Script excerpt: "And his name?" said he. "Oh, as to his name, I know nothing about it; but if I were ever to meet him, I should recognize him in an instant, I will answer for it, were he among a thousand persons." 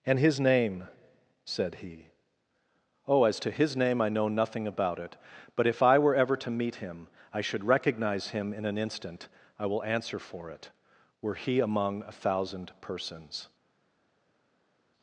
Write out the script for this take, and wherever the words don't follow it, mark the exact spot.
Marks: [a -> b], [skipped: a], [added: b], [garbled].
"And his name?" said he. "Oh, as to his name, I know nothing about it; but if I were ever to meet him, I should recognize him in an instant, I will answer for it, were he among a thousand persons."